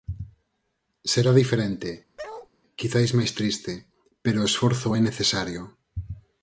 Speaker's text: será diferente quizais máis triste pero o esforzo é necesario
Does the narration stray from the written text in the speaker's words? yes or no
no